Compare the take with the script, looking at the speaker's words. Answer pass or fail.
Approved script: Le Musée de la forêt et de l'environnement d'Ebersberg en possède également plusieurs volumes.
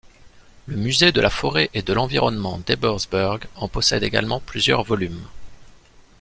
pass